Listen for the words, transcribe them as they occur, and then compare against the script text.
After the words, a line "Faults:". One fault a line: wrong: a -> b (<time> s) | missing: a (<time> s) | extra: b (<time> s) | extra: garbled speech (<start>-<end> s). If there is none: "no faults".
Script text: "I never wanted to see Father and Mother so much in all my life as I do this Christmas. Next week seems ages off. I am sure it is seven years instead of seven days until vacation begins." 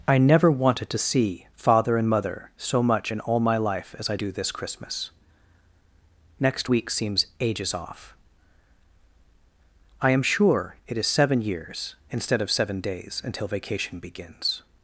"I never wanted to see Father and Mother so much in all my life as I do this Christmas. Next week seems ages off. I am sure it is seven years instead of seven days until vacation begins."
Faults:
no faults